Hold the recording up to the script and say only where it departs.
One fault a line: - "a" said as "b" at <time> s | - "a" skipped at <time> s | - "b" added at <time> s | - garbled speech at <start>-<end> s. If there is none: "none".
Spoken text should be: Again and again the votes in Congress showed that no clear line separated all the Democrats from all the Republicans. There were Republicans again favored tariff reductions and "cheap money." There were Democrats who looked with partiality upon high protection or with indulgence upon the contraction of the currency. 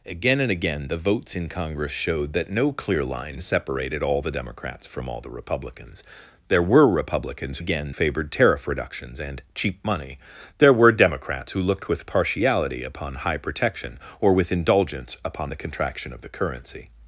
none